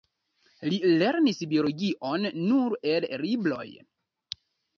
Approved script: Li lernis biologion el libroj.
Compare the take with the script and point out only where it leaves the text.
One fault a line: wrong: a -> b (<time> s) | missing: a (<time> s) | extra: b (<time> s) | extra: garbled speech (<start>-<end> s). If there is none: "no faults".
extra: nur (2.5 s)